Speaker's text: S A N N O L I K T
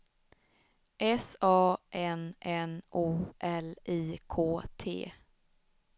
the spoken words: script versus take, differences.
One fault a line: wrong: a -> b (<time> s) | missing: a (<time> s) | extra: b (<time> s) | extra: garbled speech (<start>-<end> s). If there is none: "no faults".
no faults